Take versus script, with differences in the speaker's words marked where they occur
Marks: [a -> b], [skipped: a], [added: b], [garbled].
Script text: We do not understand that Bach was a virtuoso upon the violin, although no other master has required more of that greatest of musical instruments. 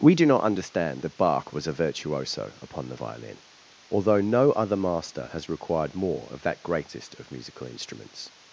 We do not understand that Bach was a virtuoso upon the violin, although no other master has required more of that greatest of musical instruments.